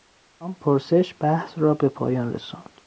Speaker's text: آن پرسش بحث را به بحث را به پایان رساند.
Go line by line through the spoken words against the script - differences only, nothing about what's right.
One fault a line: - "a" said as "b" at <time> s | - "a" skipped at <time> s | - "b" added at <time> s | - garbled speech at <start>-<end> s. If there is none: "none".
- "بحث را به" skipped at 1.9 s